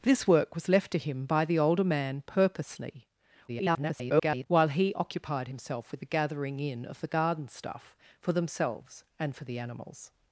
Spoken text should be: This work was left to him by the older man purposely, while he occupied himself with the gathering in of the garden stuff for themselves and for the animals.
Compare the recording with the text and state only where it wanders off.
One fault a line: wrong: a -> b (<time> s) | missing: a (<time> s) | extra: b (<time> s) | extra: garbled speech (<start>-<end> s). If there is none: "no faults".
extra: garbled speech (3.5-4.5 s)